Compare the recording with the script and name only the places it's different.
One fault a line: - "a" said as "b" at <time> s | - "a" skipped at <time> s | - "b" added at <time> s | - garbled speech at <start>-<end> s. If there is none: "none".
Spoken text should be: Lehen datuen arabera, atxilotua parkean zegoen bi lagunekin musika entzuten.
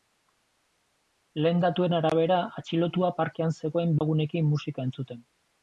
- "bi" skipped at 4.0 s